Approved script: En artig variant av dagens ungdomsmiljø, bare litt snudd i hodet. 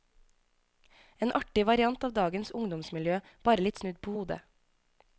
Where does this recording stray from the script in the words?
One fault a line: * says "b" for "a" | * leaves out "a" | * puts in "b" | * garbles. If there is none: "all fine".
* says "på" for "i"